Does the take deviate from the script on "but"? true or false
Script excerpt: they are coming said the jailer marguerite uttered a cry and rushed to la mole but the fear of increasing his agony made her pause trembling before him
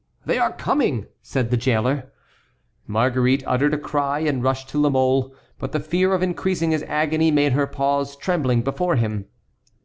false